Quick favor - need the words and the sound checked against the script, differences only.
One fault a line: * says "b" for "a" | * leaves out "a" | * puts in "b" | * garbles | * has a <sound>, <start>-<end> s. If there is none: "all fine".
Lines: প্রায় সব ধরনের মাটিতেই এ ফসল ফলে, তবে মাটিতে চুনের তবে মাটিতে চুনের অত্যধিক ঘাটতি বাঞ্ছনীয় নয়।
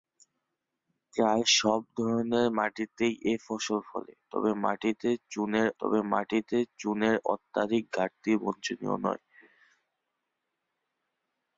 all fine